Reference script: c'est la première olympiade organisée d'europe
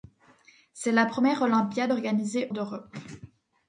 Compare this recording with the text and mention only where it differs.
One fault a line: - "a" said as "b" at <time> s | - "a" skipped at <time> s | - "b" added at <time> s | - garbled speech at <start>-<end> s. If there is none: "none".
none